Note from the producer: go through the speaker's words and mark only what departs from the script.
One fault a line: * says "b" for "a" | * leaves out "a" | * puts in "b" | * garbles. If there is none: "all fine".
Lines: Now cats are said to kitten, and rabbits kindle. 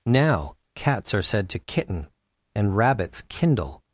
all fine